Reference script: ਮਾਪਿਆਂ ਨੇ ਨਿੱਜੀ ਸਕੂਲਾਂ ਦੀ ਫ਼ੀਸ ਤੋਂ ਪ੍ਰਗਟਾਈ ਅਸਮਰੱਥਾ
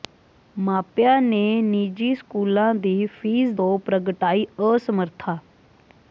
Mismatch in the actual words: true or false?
false